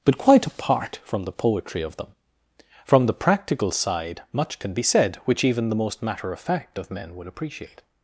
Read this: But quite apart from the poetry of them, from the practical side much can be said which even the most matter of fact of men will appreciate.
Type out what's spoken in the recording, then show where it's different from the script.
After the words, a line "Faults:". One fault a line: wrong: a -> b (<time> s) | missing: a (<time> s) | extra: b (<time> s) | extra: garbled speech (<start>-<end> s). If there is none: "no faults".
But quite apart from the poetry of them, from the practical side much can be said which even the most matter of fact of men would appreciate.
Faults:
wrong: will -> would (7.2 s)